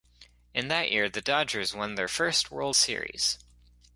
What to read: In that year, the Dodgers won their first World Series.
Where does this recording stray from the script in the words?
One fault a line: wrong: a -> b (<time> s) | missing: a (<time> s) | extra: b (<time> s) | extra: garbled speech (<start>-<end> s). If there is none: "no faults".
no faults